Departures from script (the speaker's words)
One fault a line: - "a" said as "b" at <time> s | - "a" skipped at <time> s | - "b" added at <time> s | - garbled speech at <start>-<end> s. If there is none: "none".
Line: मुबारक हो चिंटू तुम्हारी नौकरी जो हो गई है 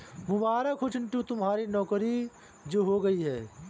none